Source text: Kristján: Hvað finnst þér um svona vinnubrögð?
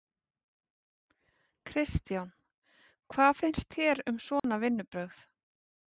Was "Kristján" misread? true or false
false